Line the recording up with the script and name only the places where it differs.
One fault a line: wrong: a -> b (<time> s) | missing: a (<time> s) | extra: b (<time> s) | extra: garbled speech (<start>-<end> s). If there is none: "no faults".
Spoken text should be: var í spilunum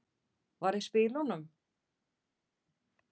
no faults